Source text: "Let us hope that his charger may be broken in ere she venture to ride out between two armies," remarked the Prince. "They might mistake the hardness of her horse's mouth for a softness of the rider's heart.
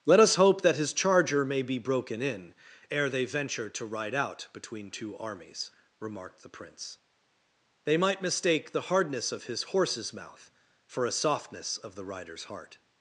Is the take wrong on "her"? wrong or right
wrong